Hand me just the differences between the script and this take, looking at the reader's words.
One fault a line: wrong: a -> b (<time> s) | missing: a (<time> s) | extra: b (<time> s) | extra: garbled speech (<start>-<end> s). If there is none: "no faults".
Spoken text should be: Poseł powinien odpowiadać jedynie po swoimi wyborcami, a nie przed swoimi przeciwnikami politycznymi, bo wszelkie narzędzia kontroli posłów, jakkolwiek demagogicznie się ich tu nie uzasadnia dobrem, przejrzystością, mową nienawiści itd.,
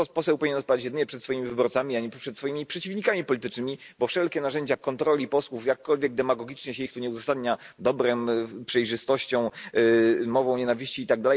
wrong: po -> przed (1.1 s)